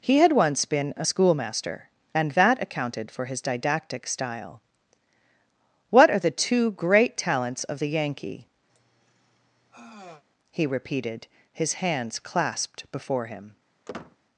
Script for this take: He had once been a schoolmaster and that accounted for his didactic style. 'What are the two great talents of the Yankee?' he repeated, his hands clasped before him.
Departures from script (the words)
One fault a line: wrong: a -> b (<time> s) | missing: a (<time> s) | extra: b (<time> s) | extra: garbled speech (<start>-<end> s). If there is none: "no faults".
no faults